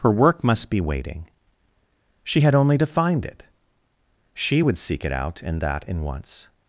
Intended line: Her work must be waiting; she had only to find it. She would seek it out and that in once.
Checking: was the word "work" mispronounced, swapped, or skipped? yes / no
no